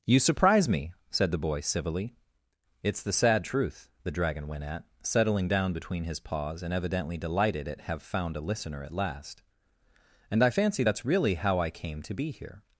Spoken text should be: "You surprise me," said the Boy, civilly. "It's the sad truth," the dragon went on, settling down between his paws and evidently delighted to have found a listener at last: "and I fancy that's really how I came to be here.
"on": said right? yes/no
no